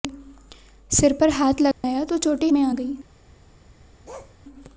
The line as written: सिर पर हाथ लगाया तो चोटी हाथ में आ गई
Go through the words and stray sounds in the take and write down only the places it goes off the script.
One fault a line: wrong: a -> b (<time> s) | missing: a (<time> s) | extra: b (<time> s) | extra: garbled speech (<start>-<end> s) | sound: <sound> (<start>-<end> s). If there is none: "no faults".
sound: dropout (1.7-1.8 s)
missing: हाथ (2.5 s)
sound: bark (4.0-4.3 s)